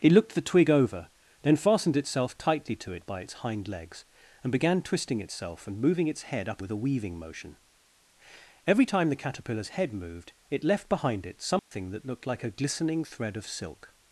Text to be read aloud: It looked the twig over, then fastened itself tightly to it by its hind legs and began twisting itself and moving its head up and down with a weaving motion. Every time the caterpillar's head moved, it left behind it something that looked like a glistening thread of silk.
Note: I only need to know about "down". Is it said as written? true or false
false